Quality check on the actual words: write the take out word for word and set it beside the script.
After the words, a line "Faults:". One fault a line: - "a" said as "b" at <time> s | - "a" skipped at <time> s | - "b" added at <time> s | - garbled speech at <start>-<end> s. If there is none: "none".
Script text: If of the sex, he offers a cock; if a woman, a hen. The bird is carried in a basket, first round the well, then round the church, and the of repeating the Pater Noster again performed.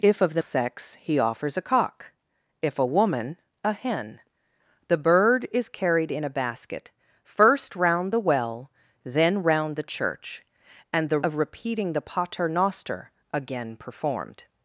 If of the sex, he offers a cock; if a woman, a hen. The bird is carried in a basket, first round the well, then round the church, and the of repeating the Pater Noster again performed.
Faults:
none